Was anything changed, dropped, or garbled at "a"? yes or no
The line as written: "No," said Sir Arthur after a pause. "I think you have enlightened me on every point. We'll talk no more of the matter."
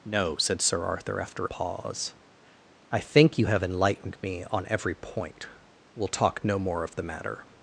yes